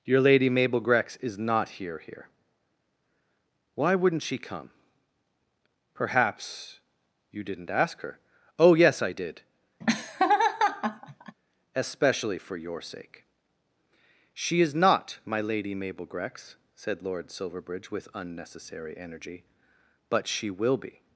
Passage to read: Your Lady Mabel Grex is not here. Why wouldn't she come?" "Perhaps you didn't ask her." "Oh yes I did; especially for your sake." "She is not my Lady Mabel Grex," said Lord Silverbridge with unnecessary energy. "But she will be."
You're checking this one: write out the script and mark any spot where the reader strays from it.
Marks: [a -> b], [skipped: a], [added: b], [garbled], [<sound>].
Your Lady Mabel Grex is not here. [added: here] Why wouldn't she come?" "Perhaps you didn't ask her." "Oh yes I did; [laugh] especially for your sake." "She is not my Lady Mabel Grex," said Lord Silverbridge with unnecessary energy. "But she will be."